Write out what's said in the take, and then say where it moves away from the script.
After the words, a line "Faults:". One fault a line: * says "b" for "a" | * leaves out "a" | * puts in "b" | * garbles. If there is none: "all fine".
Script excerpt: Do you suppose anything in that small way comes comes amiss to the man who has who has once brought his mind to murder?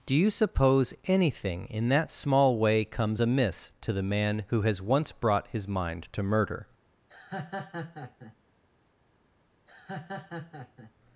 Do you suppose anything in that small way comes amiss to the man who has once brought his mind to murder?
Faults:
* leaves out "comes"
* leaves out "who has"